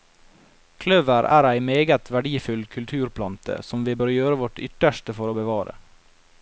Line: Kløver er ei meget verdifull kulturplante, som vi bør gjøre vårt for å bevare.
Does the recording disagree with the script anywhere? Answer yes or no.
yes